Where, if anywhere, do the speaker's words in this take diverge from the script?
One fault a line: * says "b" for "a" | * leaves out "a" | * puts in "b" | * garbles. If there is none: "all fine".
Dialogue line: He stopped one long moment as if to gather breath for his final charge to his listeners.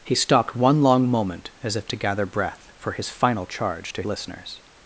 * leaves out "his"